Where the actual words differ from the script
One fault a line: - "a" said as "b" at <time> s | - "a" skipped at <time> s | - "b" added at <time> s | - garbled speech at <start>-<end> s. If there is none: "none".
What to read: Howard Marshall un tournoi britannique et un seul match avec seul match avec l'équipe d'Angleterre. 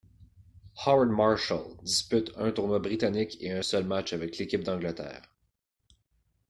- "dispute" added at 1.8 s
- "seul match avec" skipped at 4.4 s